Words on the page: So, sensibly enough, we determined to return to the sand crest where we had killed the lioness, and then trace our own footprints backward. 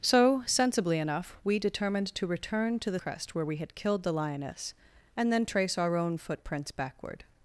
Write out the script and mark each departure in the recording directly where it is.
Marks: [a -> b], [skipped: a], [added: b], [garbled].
So, sensibly enough, we determined to return to the [skipped: sand] crest where we had killed the lioness, and then trace our own footprints backward.